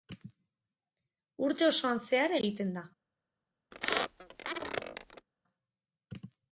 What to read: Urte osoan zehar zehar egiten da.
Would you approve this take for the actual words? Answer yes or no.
no